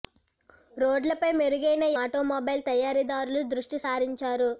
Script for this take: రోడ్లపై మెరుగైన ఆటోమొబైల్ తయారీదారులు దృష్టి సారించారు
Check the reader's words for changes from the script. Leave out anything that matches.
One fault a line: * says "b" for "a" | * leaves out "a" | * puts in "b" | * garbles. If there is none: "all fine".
all fine